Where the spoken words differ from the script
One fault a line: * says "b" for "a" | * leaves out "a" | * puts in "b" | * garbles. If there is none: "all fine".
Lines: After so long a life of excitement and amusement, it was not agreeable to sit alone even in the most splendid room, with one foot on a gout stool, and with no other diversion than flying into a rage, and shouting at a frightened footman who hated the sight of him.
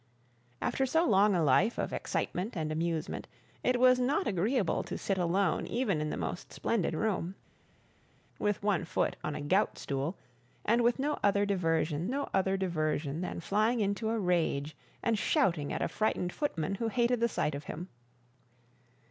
* puts in "no other diversion"